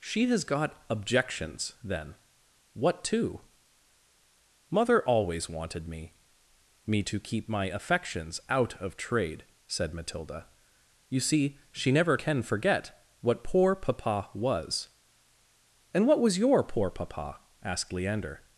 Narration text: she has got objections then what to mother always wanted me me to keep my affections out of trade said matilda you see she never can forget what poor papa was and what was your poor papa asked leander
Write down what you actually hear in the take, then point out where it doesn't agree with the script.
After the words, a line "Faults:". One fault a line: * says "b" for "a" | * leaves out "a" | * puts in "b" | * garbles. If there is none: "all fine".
she has got objections then what to mother always wanted me me to keep my affections out of trade said matilda you see she never can forget what poor papa was and what was your poor papa asked leander
Faults:
all fine